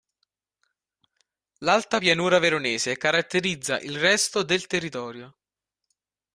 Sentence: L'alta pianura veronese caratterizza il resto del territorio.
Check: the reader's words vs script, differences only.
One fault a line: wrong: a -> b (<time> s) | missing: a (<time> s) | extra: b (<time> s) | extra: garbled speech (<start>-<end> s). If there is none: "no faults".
no faults